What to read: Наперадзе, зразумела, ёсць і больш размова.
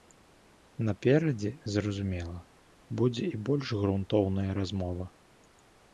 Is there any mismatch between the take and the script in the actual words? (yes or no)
yes